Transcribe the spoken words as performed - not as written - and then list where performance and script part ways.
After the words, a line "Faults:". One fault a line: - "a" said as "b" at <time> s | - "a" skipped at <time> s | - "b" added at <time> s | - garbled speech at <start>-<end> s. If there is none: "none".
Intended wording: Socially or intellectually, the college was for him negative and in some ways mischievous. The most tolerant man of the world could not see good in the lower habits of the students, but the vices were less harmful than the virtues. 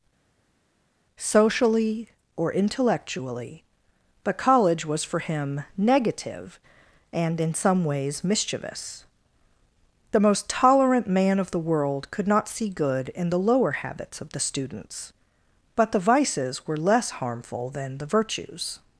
Socially or intellectually, but college was for him negative and in some ways mischievous. The most tolerant man of the world could not see good in the lower habits of the students, but the vices were less harmful than the virtues.
Faults:
- "the" said as "but" at 4.2 s